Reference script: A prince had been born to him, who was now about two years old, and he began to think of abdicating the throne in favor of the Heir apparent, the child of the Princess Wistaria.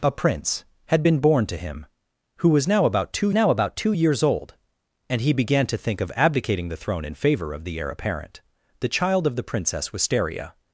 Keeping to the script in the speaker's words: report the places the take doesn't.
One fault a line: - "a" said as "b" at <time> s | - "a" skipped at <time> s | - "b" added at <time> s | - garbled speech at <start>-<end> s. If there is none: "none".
- "now about two" added at 3.3 s